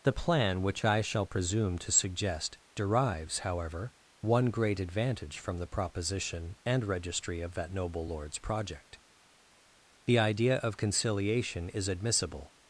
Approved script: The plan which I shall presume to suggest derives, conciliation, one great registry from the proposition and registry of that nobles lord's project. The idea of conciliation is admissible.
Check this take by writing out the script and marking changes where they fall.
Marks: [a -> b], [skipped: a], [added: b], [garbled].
The plan which I shall presume to suggest derives, [conciliation, -> however] one great [registry -> advantage] from the proposition and registry of that [nobles -> noble] lord's project. The idea of conciliation is admissible.